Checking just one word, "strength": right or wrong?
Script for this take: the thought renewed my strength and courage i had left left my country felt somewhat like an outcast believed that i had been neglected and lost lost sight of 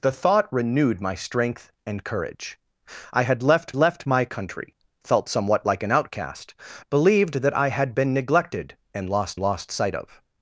right